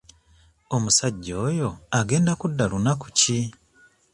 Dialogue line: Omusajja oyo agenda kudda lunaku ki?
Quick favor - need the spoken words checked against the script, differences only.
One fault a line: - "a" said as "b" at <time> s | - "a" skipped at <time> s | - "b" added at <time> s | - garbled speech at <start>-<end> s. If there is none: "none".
none